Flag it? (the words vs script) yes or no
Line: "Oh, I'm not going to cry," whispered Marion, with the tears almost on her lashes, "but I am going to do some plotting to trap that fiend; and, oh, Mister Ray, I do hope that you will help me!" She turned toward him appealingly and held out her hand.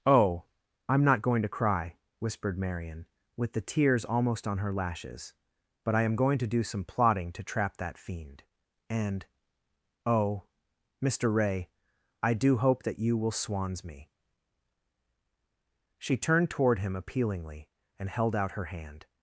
yes